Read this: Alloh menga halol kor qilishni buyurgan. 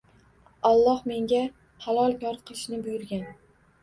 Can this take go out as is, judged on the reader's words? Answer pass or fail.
pass